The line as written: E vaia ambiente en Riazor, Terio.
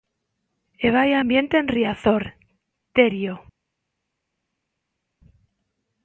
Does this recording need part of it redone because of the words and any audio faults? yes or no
no